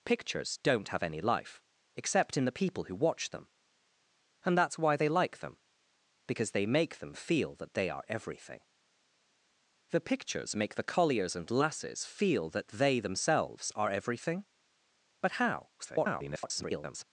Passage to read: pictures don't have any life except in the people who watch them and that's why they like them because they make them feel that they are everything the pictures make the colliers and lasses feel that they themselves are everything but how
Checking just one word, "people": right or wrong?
right